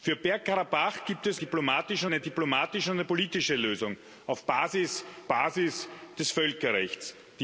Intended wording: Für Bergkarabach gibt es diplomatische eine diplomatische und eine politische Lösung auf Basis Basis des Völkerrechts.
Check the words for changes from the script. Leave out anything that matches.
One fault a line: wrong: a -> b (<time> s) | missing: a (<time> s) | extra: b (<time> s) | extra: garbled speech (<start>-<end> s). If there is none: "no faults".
no faults